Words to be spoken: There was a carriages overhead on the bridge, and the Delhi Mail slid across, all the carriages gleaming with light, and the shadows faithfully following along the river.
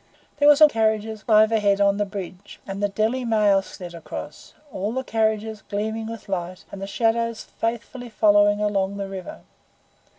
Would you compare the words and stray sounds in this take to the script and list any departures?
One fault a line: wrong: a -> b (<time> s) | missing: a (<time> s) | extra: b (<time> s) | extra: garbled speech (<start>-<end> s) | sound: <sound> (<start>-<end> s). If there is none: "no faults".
no faults